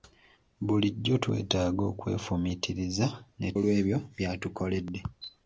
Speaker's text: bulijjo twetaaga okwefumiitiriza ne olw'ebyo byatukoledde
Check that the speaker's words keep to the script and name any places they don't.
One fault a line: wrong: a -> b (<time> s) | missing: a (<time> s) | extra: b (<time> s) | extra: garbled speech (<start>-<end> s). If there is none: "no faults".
no faults